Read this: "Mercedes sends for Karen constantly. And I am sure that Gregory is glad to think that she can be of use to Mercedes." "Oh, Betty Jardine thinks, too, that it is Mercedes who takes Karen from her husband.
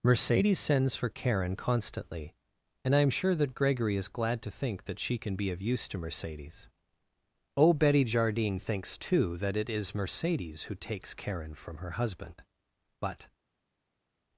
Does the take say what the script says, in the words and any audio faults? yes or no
no